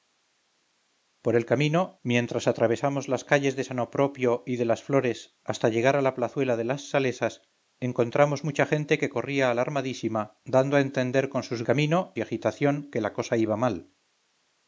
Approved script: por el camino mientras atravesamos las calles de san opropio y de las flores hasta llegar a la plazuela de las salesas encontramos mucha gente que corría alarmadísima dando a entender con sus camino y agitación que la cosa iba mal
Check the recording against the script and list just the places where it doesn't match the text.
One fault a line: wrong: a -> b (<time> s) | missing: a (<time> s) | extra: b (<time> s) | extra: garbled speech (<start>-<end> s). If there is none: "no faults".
no faults